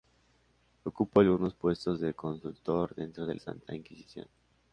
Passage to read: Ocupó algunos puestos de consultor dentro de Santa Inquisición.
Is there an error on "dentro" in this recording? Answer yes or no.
no